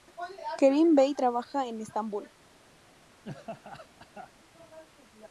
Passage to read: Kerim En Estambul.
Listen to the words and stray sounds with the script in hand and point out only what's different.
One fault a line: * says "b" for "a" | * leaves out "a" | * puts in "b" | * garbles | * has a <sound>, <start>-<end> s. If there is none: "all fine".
* puts in "Bey trabaja"
* has a laugh, 3.2-4.3 s